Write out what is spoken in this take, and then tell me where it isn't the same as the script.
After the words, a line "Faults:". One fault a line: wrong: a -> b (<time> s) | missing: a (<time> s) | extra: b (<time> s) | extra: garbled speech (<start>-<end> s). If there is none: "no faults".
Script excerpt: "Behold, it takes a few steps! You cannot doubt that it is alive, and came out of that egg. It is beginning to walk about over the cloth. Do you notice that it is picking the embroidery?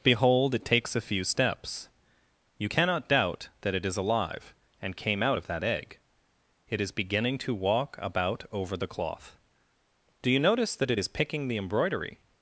"Behold, it takes a few steps! You cannot doubt that it is alive, and came out of that egg. It is beginning to walk about over the cloth. Do you notice that it is picking the embroidery?
Faults:
no faults